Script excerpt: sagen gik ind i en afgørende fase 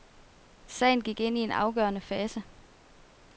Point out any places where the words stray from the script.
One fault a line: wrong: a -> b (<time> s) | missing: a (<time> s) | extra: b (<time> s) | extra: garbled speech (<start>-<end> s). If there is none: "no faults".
no faults